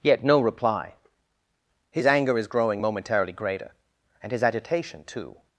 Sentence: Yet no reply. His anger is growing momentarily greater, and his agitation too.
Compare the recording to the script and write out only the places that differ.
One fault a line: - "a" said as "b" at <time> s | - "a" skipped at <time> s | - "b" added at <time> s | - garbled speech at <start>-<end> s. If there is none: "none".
none